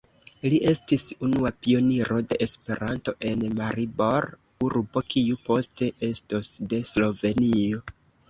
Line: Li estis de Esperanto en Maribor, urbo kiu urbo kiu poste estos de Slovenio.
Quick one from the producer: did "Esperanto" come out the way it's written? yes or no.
yes